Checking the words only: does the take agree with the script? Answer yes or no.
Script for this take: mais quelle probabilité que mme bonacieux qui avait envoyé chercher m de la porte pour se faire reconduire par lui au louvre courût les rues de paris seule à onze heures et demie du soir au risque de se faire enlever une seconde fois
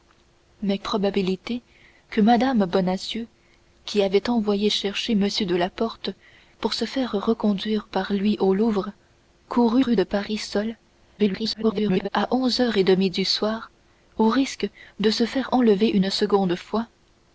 no